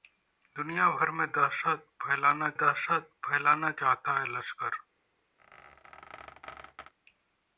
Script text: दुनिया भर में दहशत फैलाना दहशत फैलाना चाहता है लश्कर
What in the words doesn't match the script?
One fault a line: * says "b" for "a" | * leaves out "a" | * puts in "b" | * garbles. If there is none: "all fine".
all fine